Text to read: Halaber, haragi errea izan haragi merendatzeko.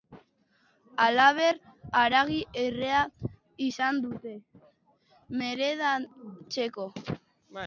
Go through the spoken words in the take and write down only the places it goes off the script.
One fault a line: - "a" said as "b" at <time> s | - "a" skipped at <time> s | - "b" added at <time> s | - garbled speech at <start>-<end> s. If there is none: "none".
- "haragi" said as "dute" at 4.1 s